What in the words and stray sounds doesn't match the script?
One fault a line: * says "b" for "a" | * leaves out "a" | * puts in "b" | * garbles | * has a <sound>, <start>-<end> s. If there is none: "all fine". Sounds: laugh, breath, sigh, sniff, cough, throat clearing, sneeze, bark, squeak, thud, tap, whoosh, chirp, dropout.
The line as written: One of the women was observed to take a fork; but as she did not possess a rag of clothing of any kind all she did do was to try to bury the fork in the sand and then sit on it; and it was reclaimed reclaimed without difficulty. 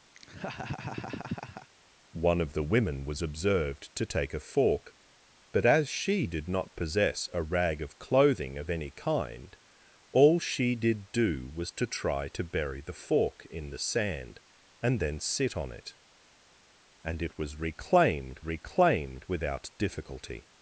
* has a laugh, 0.1-1.7 s